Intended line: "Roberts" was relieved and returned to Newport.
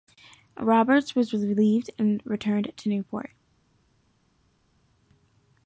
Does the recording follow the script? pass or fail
pass